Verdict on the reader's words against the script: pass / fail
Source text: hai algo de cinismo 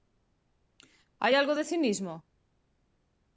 pass